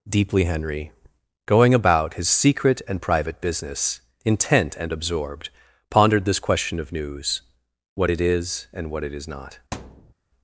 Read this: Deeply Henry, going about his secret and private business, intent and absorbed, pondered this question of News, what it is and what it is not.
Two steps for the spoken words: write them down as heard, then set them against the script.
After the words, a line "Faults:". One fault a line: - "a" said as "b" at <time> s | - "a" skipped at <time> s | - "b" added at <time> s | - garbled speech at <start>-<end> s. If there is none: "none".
Deeply Henry, going about his secret and private business, intent and absorbed, pondered this question of News, what it is and what it is not.
Faults:
none